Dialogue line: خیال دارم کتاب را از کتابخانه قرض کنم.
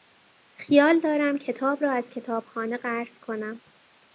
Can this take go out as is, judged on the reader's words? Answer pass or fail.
pass